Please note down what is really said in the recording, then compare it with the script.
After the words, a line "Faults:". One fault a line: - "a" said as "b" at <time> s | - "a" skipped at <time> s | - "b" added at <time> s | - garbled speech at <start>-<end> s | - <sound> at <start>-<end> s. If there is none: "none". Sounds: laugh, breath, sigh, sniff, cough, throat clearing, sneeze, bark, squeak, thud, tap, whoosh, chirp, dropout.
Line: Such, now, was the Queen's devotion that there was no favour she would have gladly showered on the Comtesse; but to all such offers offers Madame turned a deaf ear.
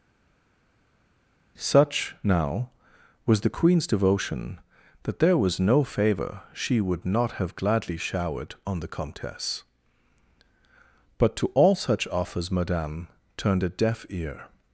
Such, now, was the Queen's devotion that there was no favour she would not have gladly showered on the Comtesse; but to all such offers Madame turned a deaf ear.
Faults:
- "not" added at 7.1 s
- "offers" skipped at 12.5 s